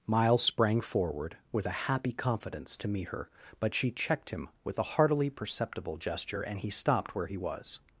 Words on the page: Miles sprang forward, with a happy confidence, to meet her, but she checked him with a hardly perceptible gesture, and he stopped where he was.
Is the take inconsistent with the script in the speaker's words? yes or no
yes